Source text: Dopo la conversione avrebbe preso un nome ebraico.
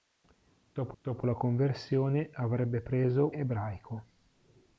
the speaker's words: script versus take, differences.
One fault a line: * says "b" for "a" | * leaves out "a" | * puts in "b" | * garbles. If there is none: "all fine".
* puts in "dopo"
* leaves out "un nome"